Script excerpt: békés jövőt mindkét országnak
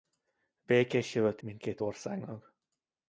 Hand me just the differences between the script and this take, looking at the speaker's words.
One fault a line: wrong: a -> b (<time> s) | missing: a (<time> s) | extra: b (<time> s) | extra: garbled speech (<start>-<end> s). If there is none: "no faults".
no faults